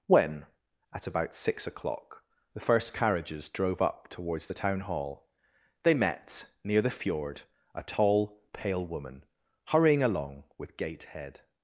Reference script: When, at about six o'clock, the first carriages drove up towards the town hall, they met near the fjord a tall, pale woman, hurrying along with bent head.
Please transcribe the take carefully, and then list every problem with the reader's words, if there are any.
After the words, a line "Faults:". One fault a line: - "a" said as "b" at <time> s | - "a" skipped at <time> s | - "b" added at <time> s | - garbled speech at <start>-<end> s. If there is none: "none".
When, at about six o'clock, the first carriages drove up towards the town hall, they met near the fjord a tall, pale woman, hurrying along with gait head.
Faults:
- "bent" said as "gait" at 10.8 s